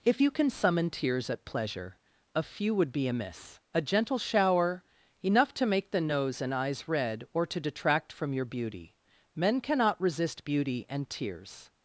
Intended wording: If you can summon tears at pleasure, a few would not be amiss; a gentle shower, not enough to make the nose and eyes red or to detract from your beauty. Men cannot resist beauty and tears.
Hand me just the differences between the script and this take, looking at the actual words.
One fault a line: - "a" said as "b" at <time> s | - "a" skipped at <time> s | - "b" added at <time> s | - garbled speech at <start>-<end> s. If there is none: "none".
- "not" skipped at 2.9 s
- "not" skipped at 4.8 s